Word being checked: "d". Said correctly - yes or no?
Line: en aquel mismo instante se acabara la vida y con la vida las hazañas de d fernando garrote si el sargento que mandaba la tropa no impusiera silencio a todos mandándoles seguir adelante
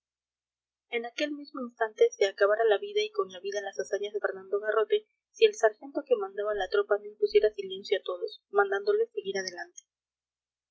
no